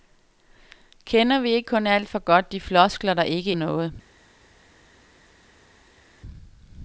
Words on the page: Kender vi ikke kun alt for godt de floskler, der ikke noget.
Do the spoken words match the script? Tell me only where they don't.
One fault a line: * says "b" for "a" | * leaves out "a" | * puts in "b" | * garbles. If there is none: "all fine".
all fine